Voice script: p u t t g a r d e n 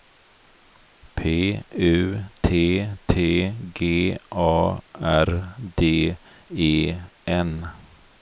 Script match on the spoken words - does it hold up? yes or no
yes